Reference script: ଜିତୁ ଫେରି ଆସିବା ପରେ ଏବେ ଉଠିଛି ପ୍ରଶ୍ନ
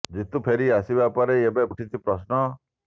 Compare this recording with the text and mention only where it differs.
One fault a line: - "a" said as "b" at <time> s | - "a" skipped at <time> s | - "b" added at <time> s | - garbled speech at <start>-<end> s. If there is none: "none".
none